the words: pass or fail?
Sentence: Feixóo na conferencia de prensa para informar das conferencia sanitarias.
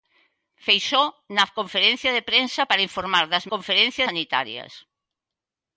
pass